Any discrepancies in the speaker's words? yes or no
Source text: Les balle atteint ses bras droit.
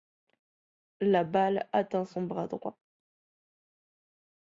yes